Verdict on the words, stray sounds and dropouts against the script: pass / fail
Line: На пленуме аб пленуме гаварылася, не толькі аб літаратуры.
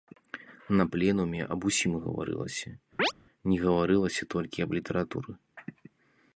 fail